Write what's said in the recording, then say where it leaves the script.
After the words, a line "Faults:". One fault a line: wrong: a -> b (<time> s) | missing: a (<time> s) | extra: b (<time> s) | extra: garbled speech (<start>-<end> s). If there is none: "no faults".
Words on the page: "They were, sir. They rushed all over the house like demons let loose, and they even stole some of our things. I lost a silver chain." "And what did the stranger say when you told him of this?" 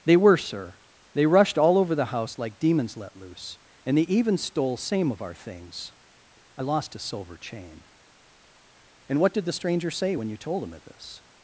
"They were, sir. They rushed all over the house like demons let loose, and they even stole same of our things. I lost a silver chain." "And what did the stranger say when you told him of this?"
Faults:
wrong: some -> same (4.8 s)